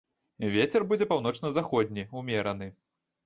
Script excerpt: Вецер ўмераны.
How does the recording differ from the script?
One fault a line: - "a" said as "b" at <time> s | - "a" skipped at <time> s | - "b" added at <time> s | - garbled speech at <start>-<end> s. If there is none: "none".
- "будзе паўночна заходні" added at 0.9 s